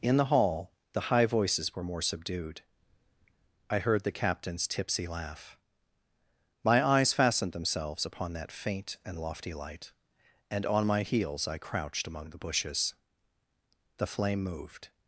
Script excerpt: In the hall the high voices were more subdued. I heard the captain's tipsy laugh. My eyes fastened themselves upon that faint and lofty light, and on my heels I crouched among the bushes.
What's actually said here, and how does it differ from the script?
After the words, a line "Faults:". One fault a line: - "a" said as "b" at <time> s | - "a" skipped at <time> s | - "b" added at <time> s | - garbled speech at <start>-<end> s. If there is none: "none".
In the hall the high voices were more subdued. I heard the captain's tipsy laugh. My eyes fastened themselves upon that faint and lofty light, and on my heels I crouched among the bushes. The flame moved
Faults:
- "The flame moved" added at 14.0 s